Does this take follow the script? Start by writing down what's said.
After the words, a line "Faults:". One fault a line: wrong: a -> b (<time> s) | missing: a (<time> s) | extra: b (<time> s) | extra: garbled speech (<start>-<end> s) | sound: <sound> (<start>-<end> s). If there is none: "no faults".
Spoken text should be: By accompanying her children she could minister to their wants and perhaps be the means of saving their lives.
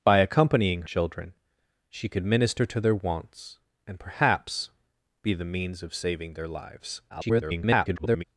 By accompanying children she could minister to their wants and perhaps be the means of saving their lives. [garbled]
Faults:
missing: her (0.8 s)
extra: garbled speech (7.1-8.2 s)